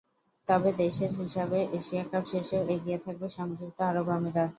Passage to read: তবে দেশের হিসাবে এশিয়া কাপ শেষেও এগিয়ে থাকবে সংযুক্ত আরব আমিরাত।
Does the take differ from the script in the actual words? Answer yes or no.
no